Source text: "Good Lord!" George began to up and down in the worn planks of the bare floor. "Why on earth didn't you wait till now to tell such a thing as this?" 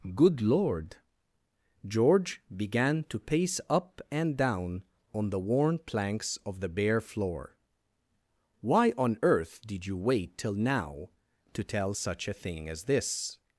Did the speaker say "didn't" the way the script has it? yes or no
no